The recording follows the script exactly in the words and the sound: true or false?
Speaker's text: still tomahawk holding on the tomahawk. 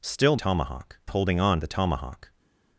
true